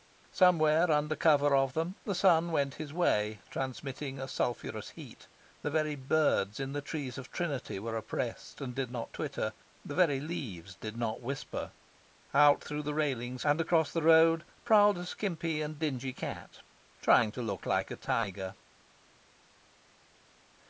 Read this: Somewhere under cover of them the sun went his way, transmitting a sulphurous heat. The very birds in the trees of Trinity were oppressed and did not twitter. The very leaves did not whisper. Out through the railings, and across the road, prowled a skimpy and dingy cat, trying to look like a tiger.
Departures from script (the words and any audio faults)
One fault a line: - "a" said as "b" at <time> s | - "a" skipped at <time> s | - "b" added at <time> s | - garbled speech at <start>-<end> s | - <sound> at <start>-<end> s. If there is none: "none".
none